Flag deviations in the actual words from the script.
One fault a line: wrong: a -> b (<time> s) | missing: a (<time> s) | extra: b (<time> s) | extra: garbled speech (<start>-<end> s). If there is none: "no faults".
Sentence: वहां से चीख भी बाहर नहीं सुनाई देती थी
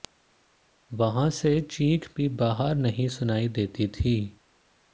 no faults